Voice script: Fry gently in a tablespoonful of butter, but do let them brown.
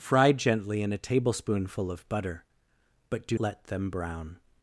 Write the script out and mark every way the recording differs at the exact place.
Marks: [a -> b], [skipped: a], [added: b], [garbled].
Fry gently in a tablespoonful of butter, but do let them brown.